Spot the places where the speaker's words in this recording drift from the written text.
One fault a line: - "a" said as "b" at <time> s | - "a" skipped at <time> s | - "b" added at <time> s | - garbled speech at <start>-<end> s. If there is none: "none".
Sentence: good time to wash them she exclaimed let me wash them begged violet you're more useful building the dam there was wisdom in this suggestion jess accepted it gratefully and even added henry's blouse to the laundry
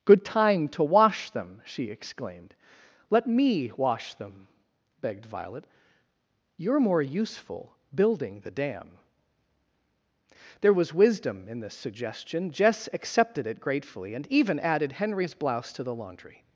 none